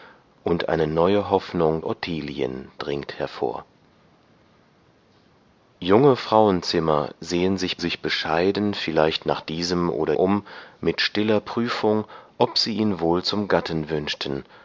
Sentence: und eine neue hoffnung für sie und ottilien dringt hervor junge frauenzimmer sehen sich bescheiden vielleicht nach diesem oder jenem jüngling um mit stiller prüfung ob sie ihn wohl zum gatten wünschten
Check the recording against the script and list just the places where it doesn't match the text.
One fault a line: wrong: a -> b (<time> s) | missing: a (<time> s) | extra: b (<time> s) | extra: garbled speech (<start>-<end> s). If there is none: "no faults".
missing: für sie und (1.9 s)
extra: sich (7.8 s)
missing: jenem jüngling (10.1 s)